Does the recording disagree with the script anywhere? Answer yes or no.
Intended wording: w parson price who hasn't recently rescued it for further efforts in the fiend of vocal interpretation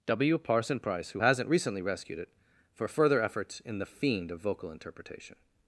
no